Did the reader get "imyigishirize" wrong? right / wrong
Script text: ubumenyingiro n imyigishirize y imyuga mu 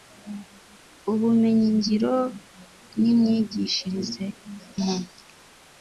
right